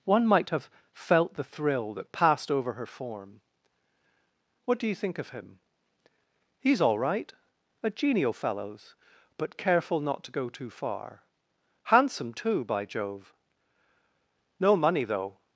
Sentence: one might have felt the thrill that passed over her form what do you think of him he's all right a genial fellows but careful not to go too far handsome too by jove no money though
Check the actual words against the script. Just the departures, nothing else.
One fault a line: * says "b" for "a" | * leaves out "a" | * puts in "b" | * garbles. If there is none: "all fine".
all fine